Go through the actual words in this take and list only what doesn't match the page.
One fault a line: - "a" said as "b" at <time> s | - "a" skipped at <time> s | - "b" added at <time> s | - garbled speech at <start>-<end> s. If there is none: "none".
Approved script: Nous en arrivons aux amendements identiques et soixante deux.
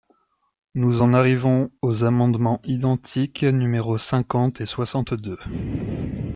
- "numéros cinquante" added at 3.4 s